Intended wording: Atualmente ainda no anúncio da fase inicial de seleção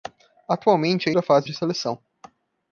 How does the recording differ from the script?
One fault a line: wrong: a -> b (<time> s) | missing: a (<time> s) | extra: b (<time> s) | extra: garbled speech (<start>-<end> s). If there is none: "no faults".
missing: ainda no anúncio (1.1 s)
missing: inicial (1.5 s)